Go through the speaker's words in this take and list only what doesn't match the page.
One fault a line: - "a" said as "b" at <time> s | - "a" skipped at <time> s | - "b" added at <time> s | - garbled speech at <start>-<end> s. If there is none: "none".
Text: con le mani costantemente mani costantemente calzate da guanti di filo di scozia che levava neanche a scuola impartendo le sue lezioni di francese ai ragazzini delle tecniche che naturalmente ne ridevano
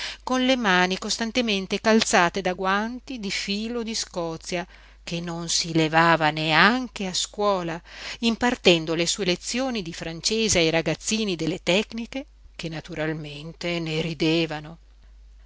- "mani costantemente" skipped at 1.8 s
- "non si" added at 5.2 s